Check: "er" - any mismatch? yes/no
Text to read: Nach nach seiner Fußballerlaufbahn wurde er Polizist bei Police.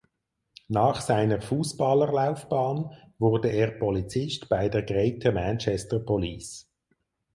no